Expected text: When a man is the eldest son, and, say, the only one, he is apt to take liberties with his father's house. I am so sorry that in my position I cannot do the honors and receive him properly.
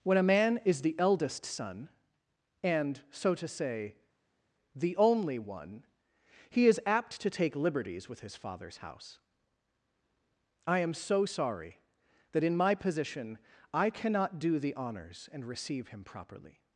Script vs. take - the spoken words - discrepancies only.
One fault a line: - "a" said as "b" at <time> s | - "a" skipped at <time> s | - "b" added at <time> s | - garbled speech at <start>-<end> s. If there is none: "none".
- "so to" added at 3.1 s